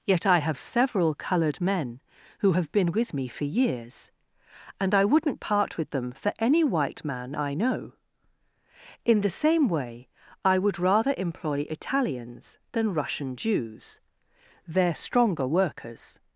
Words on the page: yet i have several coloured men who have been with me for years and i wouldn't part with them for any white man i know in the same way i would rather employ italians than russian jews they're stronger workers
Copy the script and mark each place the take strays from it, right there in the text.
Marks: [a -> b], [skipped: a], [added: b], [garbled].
yet i have several coloured men who have been with me for years and i wouldn't part with them for any white man i know in the same way i would rather employ italians than russian jews they're stronger workers